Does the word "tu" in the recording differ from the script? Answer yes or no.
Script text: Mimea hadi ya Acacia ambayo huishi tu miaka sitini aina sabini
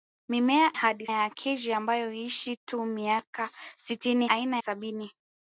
no